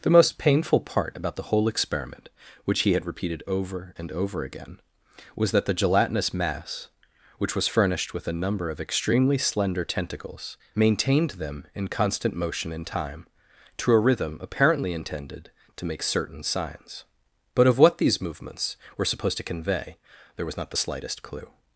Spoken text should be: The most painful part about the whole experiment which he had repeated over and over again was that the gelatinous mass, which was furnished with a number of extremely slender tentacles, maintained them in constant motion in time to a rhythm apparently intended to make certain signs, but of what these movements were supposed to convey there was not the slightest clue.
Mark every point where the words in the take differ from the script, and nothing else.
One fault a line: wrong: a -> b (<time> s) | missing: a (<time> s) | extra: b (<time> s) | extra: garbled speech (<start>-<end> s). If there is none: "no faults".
no faults